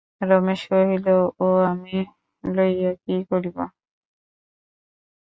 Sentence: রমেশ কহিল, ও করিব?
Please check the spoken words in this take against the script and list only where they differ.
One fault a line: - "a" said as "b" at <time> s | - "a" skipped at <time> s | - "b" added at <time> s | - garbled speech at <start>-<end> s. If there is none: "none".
- "আমি লইয়া কী" added at 1.7 s